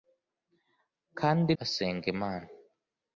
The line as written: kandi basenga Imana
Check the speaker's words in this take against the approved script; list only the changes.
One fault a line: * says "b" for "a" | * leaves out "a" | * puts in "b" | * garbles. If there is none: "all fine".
all fine